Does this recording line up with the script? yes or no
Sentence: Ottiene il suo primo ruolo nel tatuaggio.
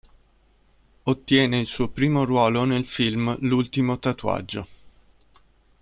no